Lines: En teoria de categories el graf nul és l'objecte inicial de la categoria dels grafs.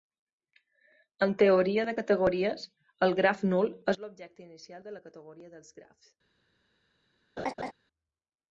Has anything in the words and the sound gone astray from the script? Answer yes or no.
yes